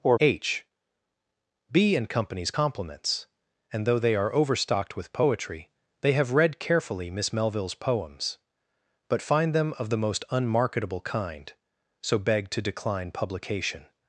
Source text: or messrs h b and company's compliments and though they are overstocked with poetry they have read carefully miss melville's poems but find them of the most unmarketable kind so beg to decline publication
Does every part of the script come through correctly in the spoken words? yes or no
no